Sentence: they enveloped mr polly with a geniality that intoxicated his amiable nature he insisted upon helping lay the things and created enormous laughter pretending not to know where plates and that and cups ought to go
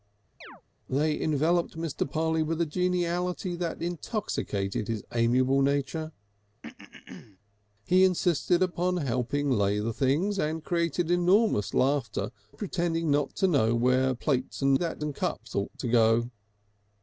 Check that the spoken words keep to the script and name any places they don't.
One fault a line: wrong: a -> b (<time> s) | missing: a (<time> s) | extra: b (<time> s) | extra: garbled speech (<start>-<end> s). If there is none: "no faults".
no faults